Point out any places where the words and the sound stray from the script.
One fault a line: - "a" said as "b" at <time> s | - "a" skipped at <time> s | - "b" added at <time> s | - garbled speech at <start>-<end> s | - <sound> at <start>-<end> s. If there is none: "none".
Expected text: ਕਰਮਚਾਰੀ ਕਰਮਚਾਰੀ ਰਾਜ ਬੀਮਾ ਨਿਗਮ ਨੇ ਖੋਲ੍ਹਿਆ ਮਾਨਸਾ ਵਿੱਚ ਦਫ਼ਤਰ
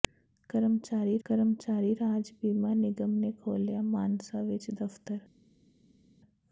none